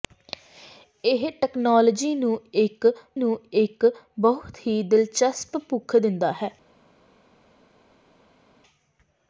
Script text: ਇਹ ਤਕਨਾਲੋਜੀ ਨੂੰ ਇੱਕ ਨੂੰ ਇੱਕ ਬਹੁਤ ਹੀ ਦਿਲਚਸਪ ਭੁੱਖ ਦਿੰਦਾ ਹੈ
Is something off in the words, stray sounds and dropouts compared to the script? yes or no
no